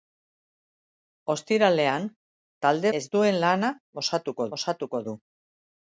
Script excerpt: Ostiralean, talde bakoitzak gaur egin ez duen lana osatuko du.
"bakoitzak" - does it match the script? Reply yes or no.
no